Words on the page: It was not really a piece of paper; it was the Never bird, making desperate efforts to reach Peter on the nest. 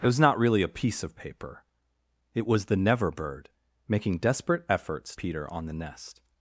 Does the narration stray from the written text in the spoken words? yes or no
yes